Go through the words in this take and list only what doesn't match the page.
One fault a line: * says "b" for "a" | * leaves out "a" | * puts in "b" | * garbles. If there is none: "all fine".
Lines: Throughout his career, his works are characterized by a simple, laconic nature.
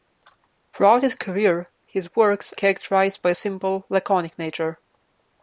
* leaves out "are"